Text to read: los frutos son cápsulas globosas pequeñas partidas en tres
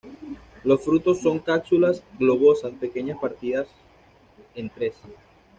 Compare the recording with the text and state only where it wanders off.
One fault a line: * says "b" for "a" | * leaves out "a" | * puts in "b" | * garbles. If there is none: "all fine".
all fine